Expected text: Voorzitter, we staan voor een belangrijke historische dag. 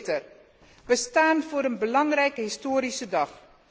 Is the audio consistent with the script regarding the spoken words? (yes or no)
yes